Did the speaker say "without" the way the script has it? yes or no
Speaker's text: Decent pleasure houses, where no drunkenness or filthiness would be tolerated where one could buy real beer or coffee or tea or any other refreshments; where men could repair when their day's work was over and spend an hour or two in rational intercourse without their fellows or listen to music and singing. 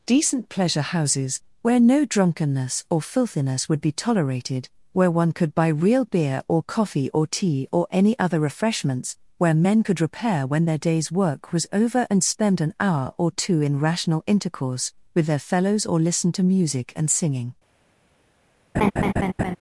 no